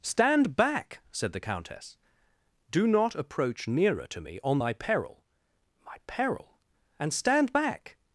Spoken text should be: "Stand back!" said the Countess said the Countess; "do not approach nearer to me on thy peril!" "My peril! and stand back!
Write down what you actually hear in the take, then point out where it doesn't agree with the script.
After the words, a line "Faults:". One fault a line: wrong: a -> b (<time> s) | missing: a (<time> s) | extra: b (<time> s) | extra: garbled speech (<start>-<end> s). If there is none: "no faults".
"Stand back!" said the Countess; "do not approach nearer to me on thy peril!" "My peril! and stand back!
Faults:
missing: said the Countess (1.9 s)